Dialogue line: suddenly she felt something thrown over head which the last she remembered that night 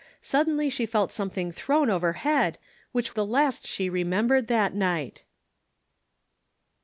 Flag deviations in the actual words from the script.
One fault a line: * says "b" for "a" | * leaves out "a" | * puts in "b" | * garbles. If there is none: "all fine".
all fine